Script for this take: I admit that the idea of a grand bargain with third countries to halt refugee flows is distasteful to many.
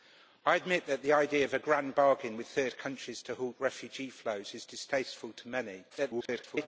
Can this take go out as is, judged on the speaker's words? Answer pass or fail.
fail